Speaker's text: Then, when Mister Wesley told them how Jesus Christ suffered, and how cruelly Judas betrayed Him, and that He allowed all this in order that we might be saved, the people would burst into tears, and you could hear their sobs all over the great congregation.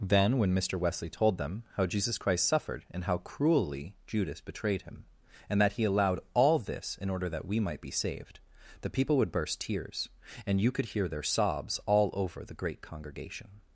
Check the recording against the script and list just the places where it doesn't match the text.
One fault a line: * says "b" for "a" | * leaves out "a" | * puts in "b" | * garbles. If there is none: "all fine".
* leaves out "into"